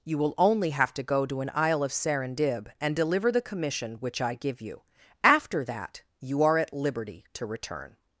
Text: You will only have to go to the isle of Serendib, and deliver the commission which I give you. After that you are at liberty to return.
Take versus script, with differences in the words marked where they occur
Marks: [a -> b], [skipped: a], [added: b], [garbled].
You will only have to go to [the -> an] isle of Serendib, and deliver the commission which I give you. After that you are at liberty to return.